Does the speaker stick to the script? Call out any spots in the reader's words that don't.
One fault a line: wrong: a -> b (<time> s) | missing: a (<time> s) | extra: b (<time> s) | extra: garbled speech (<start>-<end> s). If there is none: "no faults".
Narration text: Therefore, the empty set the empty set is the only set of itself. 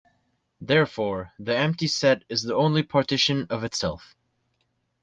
missing: the empty set (2.2 s)
wrong: set -> partition (2.8 s)